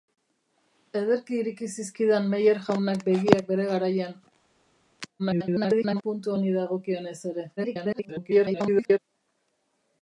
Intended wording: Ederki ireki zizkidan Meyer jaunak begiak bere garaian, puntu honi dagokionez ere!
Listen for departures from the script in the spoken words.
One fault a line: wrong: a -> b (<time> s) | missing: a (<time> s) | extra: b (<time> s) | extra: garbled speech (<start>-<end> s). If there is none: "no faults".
extra: garbled speech (5.2-6.0 s)
extra: garbled speech (7.6-9.0 s)